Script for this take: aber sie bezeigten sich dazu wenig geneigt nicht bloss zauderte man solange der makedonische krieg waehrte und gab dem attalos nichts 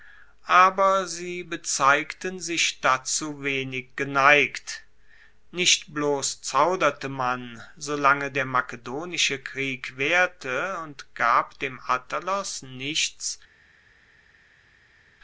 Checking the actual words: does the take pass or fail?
pass